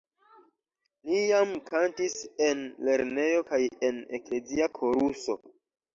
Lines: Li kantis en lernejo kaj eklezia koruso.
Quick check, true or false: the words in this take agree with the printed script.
false